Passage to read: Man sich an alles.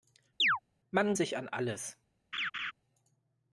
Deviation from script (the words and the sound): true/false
true